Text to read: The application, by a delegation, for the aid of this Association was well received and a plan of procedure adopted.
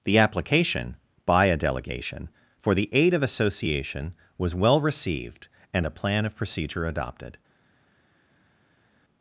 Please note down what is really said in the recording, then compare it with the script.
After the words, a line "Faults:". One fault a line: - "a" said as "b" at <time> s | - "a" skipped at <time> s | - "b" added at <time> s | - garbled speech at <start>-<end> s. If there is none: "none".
The application, by a delegation, for the aid of Association was well received and a plan of procedure adopted.
Faults:
- "this" skipped at 3.2 s